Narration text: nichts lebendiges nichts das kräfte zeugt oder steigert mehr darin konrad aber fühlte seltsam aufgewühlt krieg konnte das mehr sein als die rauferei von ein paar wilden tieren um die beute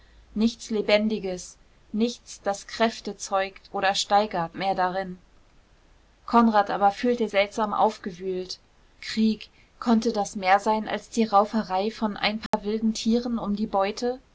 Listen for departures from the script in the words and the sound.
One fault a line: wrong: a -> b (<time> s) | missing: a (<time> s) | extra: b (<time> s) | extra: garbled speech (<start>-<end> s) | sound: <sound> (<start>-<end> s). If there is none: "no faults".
sound: dropout (12.5-12.5 s)